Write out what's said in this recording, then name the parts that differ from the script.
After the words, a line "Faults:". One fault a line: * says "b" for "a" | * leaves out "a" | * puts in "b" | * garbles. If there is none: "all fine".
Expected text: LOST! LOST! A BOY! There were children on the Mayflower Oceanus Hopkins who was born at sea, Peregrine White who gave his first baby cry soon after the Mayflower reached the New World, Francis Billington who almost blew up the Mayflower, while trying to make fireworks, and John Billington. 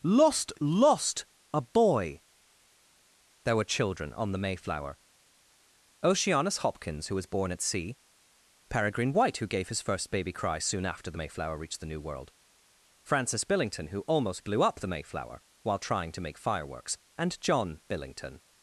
LOST! LOST! A BOY! There were children on the Mayflower Oceanus Hopkins who was born at sea, Peregrine White who gave his first baby cry soon after the Mayflower reached the New World, Francis Billington who almost blew up the Mayflower, while trying to make fireworks, and John Billington.
Faults:
all fine